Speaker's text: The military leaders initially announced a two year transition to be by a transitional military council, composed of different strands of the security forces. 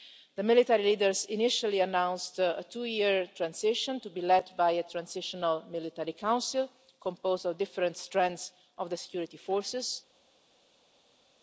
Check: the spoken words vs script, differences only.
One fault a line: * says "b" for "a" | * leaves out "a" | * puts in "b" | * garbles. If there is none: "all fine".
* puts in "led"